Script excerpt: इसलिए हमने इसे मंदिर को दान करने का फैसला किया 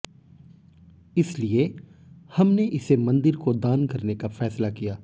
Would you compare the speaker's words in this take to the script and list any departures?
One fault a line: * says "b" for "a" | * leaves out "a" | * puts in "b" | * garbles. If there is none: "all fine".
all fine